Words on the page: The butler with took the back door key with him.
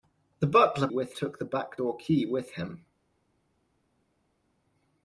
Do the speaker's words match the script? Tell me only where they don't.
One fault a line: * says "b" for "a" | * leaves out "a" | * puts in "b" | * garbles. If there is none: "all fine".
all fine